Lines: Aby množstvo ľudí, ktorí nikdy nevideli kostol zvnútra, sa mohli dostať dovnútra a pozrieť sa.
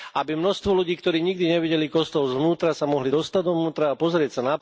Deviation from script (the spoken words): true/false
false